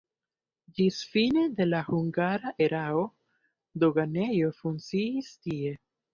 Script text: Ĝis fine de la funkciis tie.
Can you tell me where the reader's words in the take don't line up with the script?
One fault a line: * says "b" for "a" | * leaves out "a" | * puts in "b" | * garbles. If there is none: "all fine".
* puts in "hungara erao doganejo"